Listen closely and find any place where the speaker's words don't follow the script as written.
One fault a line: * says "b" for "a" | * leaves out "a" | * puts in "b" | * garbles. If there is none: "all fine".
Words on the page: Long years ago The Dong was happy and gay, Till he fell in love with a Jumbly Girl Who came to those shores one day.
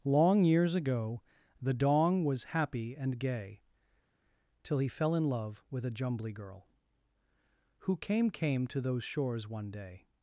* puts in "came"